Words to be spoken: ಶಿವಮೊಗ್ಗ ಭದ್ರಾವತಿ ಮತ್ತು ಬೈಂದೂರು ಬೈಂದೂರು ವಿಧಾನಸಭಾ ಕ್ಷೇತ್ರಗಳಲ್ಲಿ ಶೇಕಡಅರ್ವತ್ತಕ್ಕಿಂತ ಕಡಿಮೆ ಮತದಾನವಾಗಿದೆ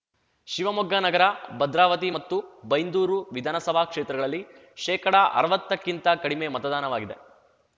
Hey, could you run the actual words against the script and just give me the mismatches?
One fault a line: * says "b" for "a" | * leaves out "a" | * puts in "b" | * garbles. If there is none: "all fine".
* puts in "ನಗರ"
* leaves out "ಬೈಂದೂರು"